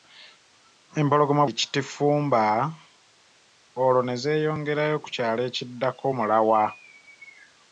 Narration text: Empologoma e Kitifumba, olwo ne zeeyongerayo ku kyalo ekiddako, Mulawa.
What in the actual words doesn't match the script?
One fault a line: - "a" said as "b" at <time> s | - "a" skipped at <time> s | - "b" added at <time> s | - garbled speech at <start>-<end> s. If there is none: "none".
none